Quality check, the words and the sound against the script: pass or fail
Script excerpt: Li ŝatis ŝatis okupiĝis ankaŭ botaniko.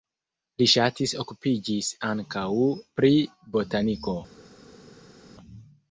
fail